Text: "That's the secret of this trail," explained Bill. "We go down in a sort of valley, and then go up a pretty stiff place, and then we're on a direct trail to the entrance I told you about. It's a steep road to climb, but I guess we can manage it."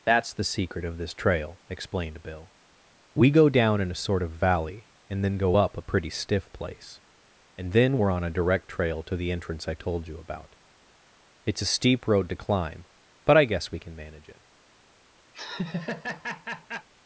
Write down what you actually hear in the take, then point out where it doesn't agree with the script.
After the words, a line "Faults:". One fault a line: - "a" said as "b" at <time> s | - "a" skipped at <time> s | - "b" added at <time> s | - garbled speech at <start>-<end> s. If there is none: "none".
"That's the secret of this trail," explained Bill. "We go down in a sort of valley, and then go up a pretty stiff place, and then we're on a direct trail to the entrance I told you about. It's a steep road to climb, but I guess we can manage it."
Faults:
none